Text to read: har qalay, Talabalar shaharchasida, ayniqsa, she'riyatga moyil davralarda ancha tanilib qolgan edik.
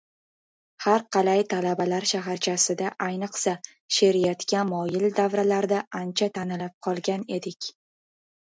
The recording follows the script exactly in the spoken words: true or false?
true